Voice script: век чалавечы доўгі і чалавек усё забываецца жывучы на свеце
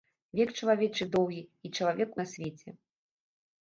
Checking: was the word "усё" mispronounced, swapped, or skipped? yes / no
yes